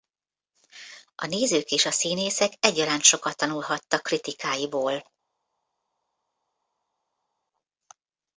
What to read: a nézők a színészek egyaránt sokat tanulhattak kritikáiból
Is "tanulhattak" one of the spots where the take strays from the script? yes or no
no